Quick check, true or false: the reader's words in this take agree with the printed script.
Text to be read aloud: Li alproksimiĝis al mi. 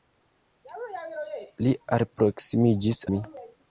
false